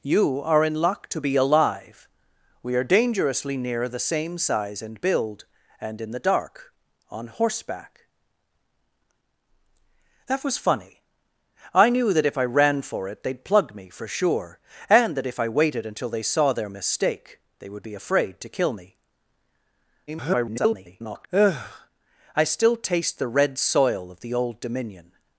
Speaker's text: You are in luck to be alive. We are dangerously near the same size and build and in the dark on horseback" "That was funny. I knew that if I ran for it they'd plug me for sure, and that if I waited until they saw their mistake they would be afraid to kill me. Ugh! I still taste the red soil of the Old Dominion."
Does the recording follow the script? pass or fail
fail